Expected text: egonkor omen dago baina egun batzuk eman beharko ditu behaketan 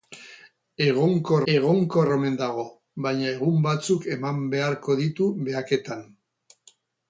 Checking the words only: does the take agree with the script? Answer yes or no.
no